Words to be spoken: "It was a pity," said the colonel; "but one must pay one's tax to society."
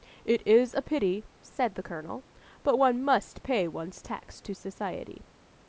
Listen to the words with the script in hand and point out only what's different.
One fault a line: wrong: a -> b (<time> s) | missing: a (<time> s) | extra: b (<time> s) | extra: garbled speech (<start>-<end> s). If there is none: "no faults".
wrong: was -> is (0.5 s)